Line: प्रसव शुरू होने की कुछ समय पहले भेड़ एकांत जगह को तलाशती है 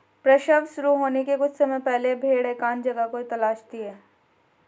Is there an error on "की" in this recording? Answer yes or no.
yes